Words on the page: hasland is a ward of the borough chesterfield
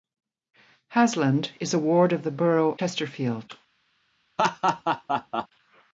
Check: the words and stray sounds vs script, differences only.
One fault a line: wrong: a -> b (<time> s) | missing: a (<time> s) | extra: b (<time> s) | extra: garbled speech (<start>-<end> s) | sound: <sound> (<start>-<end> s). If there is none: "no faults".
sound: laugh (4.4-5.5 s)